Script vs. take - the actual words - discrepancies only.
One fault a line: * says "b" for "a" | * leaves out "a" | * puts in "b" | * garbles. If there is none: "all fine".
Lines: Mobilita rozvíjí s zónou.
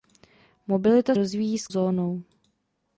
all fine